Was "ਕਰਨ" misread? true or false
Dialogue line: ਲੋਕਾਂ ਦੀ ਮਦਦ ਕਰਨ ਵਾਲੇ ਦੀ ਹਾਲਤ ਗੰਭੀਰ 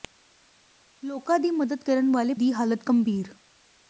false